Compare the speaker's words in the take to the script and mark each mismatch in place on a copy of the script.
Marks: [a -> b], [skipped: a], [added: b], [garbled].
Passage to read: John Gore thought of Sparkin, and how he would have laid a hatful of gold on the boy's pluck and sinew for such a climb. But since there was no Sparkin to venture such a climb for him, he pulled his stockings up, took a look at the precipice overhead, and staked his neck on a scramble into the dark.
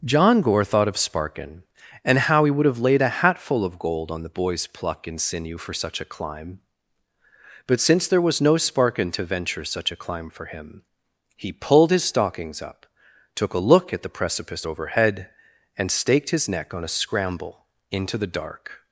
John Gore thought of Sparkin, and how he would have laid a hatful of gold on the boy's pluck and sinew for such a climb. But since there was no Sparkin to venture such a climb for him, he pulled his stockings up, took a look at the precipice overhead, and staked his neck on a scramble into the dark.